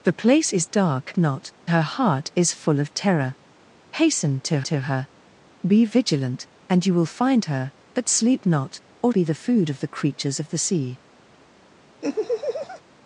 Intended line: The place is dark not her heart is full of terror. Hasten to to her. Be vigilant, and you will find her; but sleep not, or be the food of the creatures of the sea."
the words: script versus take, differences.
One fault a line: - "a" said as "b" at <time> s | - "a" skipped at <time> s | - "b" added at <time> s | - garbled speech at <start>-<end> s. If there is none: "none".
none